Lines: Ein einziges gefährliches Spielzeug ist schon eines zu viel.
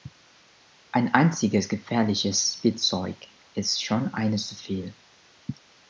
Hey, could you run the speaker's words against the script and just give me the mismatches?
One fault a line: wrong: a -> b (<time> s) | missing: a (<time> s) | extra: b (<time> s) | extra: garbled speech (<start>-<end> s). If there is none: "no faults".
no faults